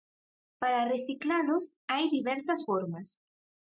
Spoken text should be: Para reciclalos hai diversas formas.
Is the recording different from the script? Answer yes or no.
no